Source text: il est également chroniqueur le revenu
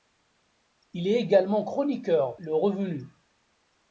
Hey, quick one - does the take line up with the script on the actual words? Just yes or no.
yes